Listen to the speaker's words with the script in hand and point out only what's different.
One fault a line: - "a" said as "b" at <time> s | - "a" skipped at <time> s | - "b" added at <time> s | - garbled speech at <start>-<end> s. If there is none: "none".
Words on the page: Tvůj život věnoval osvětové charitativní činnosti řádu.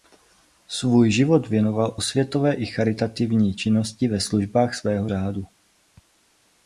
- "Tvůj" said as "Svůj" at 0.7 s
- "i" added at 2.5 s
- "ve službách svého" added at 4.1 s